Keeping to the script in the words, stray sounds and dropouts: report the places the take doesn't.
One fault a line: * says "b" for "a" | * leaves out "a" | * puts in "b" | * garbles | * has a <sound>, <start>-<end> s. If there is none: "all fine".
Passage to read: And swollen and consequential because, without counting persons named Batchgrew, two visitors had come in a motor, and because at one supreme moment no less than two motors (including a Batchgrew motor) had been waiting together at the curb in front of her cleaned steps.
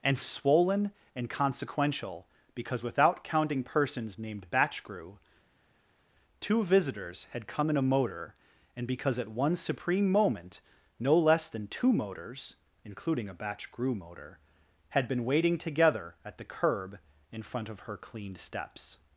all fine